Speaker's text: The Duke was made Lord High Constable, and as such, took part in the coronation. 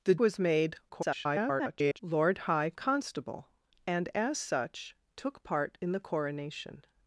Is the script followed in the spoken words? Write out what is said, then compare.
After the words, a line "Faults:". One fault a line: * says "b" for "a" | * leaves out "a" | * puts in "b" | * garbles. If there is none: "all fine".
The Was made [garbled] Lord High Constable, and as such, took part in the coronation.
Faults:
* leaves out "Duke"
* garbles